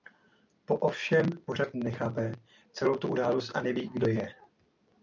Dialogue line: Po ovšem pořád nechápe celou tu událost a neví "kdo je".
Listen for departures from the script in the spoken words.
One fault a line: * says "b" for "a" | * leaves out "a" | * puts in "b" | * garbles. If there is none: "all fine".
all fine